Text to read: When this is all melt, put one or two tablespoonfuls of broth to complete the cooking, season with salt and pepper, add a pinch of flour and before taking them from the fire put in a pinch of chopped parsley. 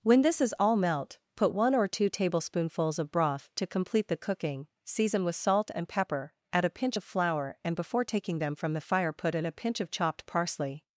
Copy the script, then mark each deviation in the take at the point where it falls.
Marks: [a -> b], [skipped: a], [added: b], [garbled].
When this is all melt, put one or two tablespoonfuls of broth to complete the cooking, season with salt and pepper, add a pinch of flour and before taking them from the fire put in a pinch of chopped parsley.